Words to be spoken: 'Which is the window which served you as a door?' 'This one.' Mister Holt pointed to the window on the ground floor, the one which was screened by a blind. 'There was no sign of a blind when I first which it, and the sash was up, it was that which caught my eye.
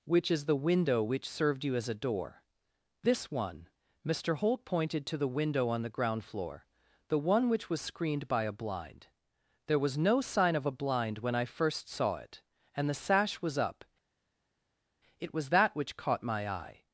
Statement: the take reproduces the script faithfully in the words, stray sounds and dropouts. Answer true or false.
false